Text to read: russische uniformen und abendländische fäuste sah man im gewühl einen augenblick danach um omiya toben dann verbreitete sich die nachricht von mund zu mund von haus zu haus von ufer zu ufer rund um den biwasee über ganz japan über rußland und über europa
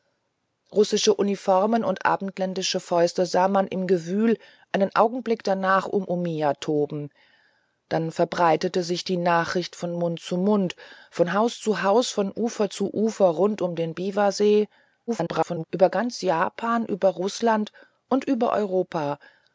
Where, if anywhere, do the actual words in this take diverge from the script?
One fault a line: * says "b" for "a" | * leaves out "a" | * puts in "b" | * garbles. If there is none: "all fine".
* garbles